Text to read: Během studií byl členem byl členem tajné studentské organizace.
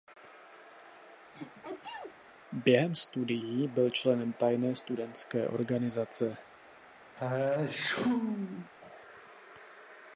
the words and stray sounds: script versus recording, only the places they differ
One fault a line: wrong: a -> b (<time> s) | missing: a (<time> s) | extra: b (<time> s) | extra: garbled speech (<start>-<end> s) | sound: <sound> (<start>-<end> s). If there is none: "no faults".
sound: sneeze (1.3-2.2 s)
missing: byl členem (4.3 s)
sound: sneeze (7.2-8.7 s)